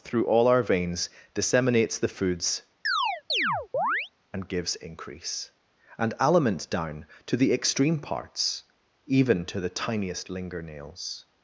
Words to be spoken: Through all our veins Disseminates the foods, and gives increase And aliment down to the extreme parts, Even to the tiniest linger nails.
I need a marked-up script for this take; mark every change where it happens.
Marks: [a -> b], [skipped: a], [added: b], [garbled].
Through all our veins Disseminates the foods, and gives increase And aliment down to the extreme parts, Even to the tiniest linger nails.